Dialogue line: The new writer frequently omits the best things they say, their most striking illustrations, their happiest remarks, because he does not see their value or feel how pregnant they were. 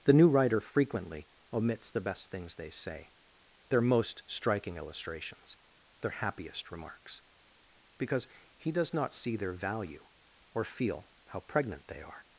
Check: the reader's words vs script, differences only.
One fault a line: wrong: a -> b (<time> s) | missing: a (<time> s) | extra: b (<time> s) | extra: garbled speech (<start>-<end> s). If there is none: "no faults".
wrong: were -> are (12.0 s)